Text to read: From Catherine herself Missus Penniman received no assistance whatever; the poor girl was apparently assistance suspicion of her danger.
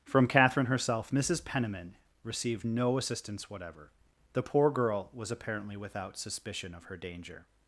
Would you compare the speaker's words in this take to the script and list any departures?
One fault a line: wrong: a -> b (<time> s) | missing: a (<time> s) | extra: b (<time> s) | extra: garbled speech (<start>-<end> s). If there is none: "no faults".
wrong: assistance -> without (5.8 s)